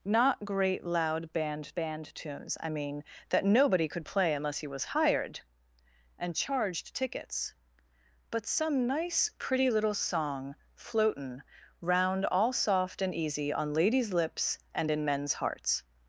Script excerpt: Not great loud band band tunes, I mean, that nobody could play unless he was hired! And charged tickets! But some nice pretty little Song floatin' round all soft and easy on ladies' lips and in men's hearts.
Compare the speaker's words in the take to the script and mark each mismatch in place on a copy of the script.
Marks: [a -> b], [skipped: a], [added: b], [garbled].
Not great loud band band tunes, I mean, that nobody could play unless he was hired! And charged tickets! But some nice pretty little Song floatin' round all soft and easy on ladies' lips and in men's hearts.